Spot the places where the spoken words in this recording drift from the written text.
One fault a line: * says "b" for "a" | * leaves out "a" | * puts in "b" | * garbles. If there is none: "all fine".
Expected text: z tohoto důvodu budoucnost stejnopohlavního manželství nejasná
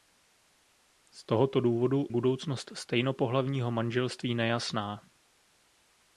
all fine